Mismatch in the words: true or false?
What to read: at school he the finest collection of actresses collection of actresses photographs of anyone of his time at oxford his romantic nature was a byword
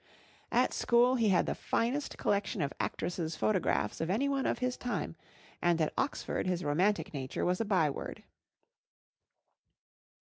true